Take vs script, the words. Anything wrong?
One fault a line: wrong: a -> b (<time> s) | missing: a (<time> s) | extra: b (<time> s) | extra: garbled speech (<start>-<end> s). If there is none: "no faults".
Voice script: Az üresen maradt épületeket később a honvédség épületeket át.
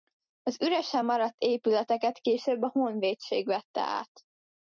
wrong: épületeket -> vette (3.5 s)